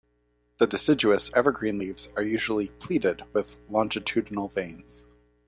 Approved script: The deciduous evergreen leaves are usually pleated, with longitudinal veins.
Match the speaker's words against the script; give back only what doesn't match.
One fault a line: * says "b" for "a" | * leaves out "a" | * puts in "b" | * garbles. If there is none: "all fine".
all fine